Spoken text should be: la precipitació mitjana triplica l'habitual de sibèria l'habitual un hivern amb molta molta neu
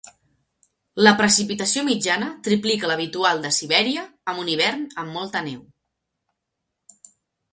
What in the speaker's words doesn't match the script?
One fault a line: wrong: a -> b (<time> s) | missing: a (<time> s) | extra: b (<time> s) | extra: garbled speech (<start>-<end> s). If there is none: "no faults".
wrong: l'habitual -> amb (4.3 s)
missing: molta (5.4 s)